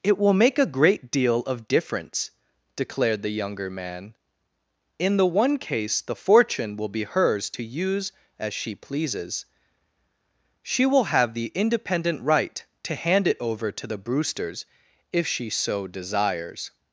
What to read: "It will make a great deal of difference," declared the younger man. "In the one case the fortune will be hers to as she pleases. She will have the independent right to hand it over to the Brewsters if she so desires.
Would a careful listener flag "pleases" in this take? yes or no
no